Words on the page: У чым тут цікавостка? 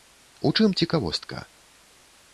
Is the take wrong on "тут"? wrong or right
wrong